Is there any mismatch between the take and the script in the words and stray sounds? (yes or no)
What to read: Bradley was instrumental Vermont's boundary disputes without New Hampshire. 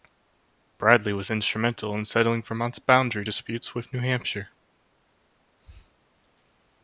yes